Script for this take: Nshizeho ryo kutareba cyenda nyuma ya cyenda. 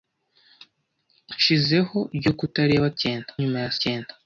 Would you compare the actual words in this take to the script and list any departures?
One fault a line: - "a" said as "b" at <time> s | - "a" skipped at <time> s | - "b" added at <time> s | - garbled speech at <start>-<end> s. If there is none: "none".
none